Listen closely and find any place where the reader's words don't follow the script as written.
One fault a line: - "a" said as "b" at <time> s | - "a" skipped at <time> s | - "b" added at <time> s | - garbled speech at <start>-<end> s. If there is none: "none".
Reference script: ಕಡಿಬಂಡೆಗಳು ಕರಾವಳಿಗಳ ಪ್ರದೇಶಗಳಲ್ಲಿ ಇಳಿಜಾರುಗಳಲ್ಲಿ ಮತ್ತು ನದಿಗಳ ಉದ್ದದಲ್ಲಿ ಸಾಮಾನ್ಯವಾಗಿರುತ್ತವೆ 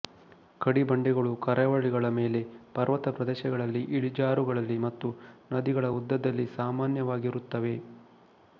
- "ಮೇಲೆ ಪರ್ವತ" added at 2.1 s